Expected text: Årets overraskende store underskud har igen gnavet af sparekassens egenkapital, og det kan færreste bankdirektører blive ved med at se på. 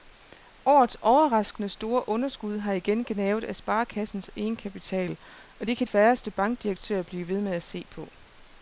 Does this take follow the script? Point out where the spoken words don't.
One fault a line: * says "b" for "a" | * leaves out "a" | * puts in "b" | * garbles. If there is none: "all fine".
all fine